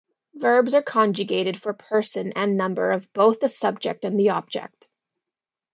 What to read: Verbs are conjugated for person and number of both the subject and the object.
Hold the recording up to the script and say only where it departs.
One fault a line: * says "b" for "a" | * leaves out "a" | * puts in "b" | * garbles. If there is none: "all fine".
all fine